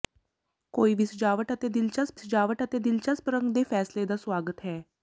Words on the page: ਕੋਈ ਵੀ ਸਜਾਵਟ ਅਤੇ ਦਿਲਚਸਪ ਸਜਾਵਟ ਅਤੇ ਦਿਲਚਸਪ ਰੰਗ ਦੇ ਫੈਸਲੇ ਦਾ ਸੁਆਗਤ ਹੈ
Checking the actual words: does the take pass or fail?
pass